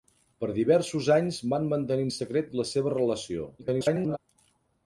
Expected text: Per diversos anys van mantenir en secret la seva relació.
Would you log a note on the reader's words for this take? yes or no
yes